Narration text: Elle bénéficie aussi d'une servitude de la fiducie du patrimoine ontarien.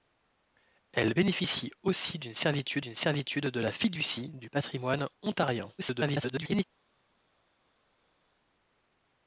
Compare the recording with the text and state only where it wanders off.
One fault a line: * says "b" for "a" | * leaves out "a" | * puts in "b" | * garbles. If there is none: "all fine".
* puts in "d'une servitude"
* garbles